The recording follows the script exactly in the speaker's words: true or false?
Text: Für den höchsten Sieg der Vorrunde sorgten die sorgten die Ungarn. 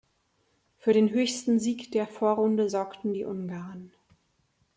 false